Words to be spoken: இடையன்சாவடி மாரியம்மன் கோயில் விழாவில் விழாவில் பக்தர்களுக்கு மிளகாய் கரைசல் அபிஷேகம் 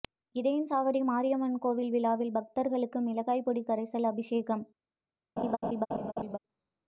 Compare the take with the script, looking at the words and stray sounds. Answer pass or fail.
fail